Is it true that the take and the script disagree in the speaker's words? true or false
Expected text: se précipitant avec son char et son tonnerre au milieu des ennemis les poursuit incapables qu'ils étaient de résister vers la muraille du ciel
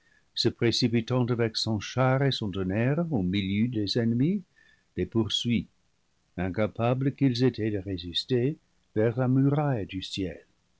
false